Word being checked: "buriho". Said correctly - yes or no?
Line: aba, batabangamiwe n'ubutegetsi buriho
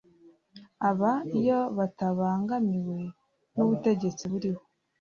yes